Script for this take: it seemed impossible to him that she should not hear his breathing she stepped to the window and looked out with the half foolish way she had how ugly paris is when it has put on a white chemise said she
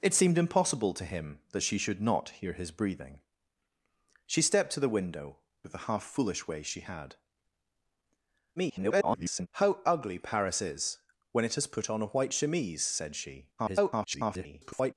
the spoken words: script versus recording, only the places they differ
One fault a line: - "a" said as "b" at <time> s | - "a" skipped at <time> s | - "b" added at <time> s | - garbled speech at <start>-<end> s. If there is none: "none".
- "and looked out" skipped at 5.4 s
- garbled speech at 8.6-9.5 s
- garbled speech at 13.6-14.9 s